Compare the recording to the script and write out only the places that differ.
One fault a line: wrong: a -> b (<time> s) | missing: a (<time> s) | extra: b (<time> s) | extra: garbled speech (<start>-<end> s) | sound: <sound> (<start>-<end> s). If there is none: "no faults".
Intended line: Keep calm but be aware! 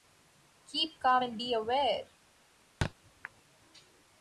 wrong: but -> and (1.2 s)
sound: thud (2.8-2.9 s)